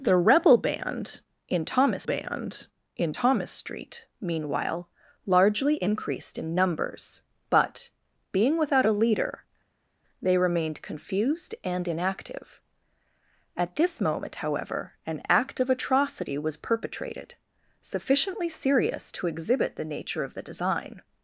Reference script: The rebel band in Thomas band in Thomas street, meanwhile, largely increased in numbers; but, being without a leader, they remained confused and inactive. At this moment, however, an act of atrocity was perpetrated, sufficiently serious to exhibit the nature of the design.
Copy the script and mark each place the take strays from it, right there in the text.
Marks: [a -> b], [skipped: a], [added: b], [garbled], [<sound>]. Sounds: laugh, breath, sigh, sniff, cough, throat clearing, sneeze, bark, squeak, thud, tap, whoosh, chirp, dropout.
The rebel band in Thomas band in Thomas street, meanwhile, largely increased in numbers; but, being without a leader, they remained confused and inactive. At this moment, however, an act of atrocity was perpetrated, sufficiently serious to exhibit the nature of the design.